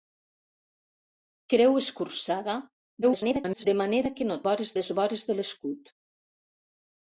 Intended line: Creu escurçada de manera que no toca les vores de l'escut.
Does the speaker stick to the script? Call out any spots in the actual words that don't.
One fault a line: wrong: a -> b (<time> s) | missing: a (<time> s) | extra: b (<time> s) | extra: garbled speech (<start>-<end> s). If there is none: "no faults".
extra: garbled speech (3.0-3.7 s)
wrong: toca -> vores (4.5 s)